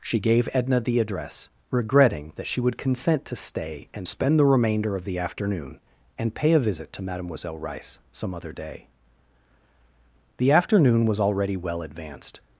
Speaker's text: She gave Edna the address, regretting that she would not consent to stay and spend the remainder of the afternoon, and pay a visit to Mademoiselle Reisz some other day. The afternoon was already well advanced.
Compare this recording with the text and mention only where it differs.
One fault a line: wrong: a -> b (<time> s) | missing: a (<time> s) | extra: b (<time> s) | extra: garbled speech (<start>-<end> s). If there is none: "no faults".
missing: not (2.8 s)